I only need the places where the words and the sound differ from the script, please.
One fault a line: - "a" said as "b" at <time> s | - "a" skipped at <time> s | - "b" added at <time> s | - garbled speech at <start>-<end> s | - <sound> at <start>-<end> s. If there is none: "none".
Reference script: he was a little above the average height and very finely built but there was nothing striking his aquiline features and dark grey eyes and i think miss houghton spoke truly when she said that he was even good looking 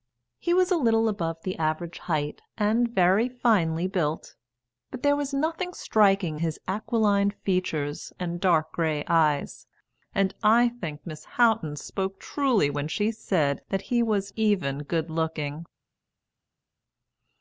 none